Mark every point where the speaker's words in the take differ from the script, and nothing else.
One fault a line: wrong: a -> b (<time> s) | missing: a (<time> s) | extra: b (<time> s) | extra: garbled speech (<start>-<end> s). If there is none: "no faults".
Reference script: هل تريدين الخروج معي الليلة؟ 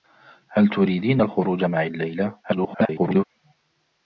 extra: garbled speech (2.4-3.2 s)